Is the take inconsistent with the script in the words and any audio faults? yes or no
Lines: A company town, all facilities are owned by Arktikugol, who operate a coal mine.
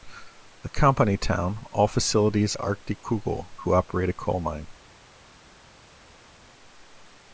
yes